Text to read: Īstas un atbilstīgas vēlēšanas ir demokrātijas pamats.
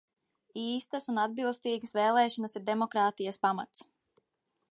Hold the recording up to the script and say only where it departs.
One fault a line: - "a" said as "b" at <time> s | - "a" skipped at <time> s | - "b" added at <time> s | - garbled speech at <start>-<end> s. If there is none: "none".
none